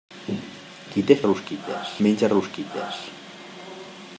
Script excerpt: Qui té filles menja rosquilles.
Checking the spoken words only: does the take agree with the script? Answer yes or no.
no